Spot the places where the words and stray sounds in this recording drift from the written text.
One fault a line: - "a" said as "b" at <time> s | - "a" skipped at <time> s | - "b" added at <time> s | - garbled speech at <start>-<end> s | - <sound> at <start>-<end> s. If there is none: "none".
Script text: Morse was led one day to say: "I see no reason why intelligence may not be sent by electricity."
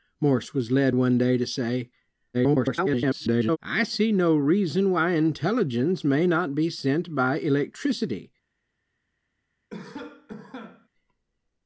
- garbled speech at 2.3-3.6 s
- cough at 9.7-10.9 s